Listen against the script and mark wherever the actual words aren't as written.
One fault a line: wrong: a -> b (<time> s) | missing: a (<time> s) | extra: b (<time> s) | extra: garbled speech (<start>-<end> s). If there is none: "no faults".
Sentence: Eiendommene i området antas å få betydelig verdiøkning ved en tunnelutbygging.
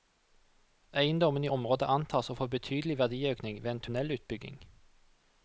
no faults